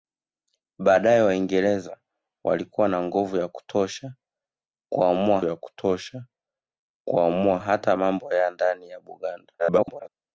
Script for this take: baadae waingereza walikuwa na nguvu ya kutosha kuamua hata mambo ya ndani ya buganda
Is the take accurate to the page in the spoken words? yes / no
no